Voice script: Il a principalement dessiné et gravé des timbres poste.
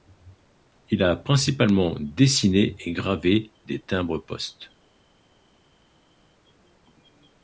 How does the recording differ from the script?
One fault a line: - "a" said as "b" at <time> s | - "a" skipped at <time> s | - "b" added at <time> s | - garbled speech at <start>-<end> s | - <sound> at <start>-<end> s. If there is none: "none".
none